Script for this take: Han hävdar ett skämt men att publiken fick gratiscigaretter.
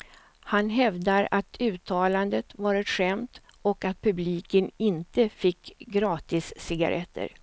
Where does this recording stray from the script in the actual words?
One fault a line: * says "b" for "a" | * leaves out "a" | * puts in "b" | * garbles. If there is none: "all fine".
* puts in "att uttalandet var"
* says "och" for "men"
* puts in "inte"